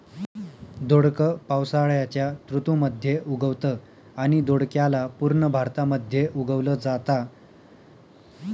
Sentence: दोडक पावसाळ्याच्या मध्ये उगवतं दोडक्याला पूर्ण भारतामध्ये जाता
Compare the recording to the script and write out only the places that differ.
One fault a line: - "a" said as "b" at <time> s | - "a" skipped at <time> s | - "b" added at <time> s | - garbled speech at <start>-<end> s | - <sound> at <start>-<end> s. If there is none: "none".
- "ऋतू" added at 2.5 s
- "आणि" added at 4.2 s
- "उगवल" added at 6.4 s